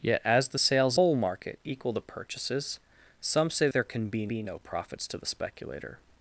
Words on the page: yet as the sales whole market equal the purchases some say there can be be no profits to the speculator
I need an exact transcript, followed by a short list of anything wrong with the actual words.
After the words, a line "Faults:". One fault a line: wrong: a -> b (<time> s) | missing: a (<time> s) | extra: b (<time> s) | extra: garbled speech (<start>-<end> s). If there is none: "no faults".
yet as the sales whole market equal the purchases some say there can be be no profits to the speculator
Faults:
no faults